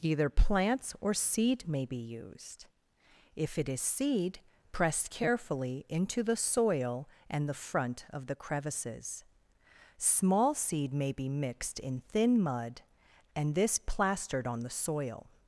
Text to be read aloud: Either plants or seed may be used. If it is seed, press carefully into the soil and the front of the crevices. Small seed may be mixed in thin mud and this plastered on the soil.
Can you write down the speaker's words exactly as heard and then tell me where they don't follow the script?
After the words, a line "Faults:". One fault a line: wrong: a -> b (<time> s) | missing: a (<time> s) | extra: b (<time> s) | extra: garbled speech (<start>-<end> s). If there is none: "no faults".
Either plants or seed may be used. If it is seed, press carefully into the soil and the front of the crevices. Small seed may be mixed in thin mud and this plastered on the soil.
Faults:
no faults